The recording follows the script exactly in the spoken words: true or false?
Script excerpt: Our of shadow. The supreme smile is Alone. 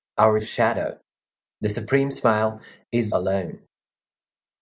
true